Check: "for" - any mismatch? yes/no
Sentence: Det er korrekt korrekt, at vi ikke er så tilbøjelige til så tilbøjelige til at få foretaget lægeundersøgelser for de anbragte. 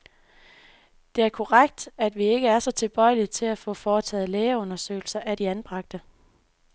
yes